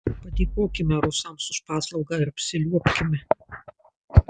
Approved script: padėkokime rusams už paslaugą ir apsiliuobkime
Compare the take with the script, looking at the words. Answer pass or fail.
pass